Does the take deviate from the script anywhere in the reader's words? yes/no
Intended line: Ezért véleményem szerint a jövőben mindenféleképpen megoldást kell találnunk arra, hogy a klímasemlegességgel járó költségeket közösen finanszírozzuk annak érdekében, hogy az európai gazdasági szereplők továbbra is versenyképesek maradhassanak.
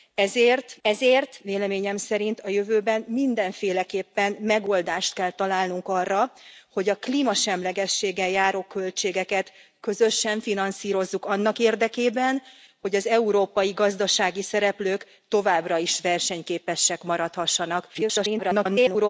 yes